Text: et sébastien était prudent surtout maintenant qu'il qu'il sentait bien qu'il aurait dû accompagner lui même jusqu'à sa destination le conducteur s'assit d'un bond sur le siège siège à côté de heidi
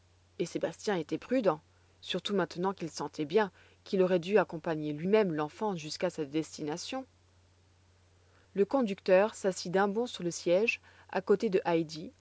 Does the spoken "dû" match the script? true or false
true